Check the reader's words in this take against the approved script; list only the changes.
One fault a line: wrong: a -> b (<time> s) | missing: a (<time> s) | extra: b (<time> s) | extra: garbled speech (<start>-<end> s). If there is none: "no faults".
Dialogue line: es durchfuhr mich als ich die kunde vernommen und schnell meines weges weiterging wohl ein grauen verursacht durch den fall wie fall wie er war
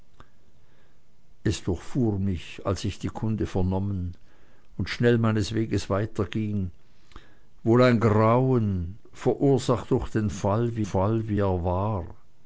no faults